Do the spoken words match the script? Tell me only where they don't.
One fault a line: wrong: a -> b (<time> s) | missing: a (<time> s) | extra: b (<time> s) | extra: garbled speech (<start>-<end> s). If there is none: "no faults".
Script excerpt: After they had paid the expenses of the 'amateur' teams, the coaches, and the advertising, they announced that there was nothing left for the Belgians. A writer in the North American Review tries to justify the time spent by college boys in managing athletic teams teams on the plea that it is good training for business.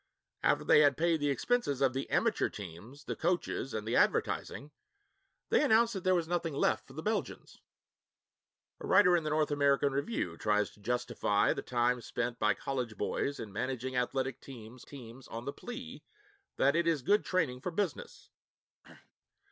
no faults